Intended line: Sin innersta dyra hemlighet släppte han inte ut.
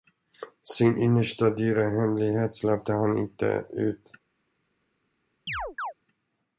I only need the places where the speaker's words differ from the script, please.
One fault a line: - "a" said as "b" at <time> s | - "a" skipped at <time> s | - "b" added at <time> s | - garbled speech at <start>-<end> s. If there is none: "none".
none